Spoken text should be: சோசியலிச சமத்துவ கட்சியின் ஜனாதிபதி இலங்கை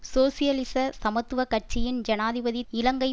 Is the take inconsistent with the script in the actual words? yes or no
no